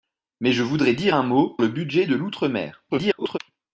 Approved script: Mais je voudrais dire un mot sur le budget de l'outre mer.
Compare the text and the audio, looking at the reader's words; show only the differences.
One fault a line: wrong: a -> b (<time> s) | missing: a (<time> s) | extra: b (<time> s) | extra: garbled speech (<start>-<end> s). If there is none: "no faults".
missing: sur (1.6 s)
extra: garbled speech (2.9-3.4 s)